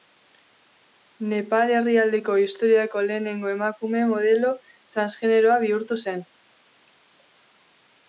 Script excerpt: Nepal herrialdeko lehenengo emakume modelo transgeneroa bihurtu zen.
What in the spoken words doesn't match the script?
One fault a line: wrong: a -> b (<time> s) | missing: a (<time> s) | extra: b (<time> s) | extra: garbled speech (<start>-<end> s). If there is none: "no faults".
extra: historiako (2.5 s)